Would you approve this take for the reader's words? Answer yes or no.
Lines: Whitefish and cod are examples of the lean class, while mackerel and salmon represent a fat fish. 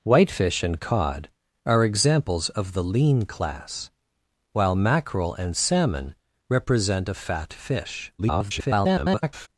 no